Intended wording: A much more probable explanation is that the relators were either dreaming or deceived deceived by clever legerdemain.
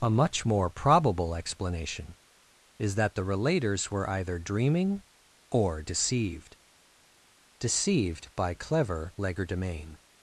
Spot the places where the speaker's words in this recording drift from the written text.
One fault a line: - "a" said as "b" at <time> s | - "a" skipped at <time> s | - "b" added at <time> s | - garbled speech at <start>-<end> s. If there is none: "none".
none